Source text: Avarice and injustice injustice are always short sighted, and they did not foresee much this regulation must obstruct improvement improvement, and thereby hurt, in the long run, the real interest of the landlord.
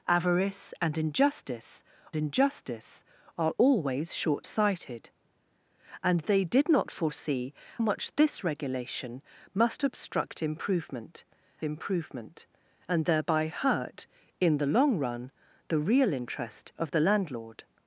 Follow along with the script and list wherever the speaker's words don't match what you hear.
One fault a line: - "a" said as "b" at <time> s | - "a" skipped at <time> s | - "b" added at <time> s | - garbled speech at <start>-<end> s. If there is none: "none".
none